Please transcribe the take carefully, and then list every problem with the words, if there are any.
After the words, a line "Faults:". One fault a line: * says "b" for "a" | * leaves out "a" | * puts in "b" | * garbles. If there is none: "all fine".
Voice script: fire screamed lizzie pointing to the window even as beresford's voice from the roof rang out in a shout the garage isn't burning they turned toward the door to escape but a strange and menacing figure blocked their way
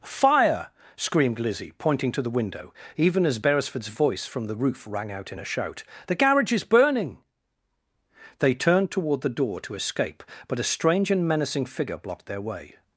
fire screamed lizzie pointing to the window even as beresford's voice from the roof rang out in a shout the garage is burning they turned toward the door to escape but a strange and menacing figure blocked their way
Faults:
* says "is" for "isn't"